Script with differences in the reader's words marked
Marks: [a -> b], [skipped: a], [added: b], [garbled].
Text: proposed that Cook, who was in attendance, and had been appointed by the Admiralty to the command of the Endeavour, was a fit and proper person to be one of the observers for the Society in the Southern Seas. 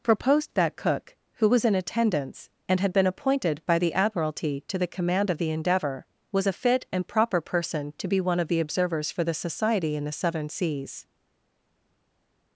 proposed that Cook, who was in attendance, and had been appointed by the Admiralty to the command of the Endeavour, was a fit and proper person to be one of the observers for the Society in the Southern Seas.